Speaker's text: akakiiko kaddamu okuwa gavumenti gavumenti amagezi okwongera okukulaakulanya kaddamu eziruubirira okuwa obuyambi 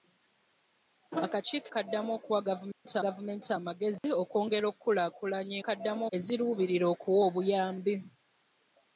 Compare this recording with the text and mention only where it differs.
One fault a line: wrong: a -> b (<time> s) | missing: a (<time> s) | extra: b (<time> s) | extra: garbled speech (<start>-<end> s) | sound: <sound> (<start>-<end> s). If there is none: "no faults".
sound: dropout (2.7-2.9 s)
sound: dropout (4.0-4.0 s)